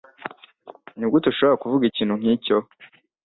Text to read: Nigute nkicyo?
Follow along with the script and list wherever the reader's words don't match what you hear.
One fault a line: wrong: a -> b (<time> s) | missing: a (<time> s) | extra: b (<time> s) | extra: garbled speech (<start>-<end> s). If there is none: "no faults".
extra: ushobora kuvuga ikintu (1.3 s)